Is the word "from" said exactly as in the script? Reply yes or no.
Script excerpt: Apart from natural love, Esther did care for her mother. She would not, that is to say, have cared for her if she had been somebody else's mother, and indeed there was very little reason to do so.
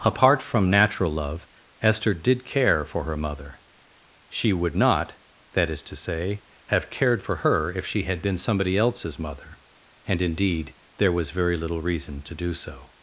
yes